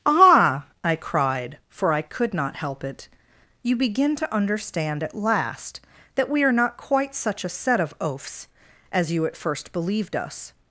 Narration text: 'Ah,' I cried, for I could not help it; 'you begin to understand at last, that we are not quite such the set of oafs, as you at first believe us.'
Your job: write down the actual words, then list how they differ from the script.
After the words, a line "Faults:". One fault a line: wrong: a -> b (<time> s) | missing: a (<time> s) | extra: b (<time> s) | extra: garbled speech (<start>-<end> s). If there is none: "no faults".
'Ah,' I cried, for I could not help it; 'you begin to understand at last, that we are not quite such a set of oafs, as you at first believed us.'
Faults:
wrong: the -> a (7.4 s)
wrong: believe -> believed (9.7 s)